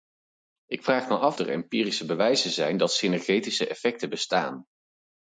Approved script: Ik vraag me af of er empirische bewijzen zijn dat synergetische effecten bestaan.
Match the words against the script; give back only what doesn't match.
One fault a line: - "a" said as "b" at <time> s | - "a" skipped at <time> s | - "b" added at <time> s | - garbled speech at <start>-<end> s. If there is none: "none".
- "of" skipped at 1.4 s